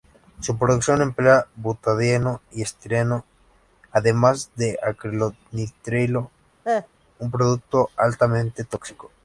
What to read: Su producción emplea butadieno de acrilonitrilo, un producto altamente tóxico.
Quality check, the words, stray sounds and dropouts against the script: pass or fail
fail